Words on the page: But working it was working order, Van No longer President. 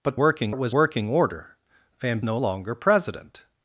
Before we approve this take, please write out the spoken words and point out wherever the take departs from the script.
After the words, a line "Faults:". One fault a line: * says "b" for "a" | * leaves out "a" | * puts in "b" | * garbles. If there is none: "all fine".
But working it was working order, Van No longer President.
Faults:
all fine